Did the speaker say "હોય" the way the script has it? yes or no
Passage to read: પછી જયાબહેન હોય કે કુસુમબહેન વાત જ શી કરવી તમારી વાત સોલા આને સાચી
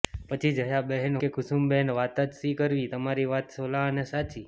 no